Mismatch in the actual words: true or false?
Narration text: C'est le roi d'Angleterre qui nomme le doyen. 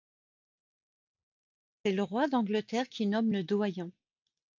false